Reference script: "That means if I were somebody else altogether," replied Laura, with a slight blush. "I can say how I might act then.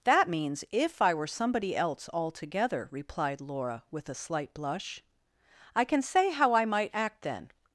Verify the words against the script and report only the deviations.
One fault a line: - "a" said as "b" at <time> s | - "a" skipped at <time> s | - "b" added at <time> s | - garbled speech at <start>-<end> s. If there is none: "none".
none